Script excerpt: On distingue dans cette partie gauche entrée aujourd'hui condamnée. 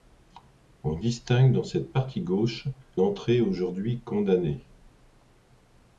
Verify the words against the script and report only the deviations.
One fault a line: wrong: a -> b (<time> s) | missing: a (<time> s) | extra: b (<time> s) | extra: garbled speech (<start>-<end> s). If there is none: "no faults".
no faults